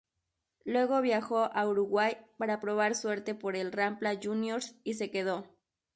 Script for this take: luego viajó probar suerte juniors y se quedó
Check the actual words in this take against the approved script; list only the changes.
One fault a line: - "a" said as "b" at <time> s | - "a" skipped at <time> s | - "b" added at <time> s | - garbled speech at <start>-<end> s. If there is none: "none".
- "a uruguay para" added at 1.5 s
- "por el rampla" added at 3.3 s